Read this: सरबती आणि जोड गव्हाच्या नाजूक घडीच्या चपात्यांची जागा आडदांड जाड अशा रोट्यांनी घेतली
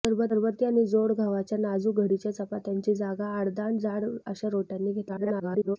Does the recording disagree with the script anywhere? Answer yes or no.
yes